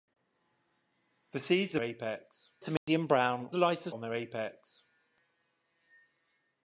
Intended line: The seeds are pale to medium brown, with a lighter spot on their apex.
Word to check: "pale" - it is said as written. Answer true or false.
false